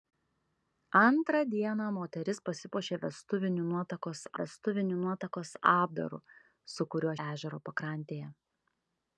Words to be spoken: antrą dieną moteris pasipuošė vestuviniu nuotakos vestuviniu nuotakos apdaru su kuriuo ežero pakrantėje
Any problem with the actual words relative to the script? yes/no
no